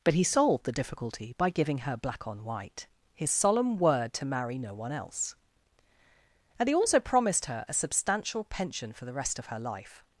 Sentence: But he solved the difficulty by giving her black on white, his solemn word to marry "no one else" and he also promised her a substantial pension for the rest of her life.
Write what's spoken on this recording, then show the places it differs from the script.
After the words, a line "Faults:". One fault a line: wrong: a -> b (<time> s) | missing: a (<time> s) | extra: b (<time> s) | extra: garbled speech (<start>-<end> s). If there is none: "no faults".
But he solved the difficulty by giving her black on white, his solemn word to marry "no one else" and he also promised her a substantial pension for the rest of her life.
Faults:
no faults